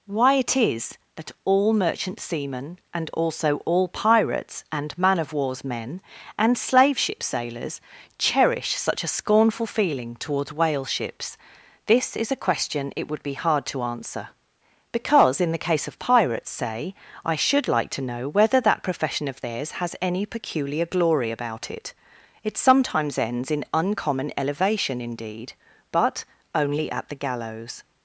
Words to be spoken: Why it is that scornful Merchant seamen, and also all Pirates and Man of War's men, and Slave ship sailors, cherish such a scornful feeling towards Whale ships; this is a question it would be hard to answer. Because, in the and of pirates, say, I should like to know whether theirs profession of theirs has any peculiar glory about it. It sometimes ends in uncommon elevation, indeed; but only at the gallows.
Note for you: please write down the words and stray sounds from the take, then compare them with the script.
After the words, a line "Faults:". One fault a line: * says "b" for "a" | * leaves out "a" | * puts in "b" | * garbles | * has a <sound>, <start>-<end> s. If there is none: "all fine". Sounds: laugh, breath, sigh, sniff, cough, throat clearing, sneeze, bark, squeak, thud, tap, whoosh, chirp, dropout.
Why it is that all Merchant seamen, and also all Pirates and Man of War's men, and Slave ship sailors, cherish such a scornful feeling towards Whale ships; this is a question it would be hard to answer. Because, in the case of pirates, say, I should like to know whether that profession of theirs has any peculiar glory about it. It sometimes ends in uncommon elevation, indeed; but only at the gallows.
Faults:
* says "all" for "scornful"
* says "case" for "and"
* says "that" for "theirs"